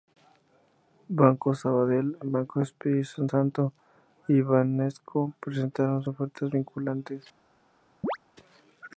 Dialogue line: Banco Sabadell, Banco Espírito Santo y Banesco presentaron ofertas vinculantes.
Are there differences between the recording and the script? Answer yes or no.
no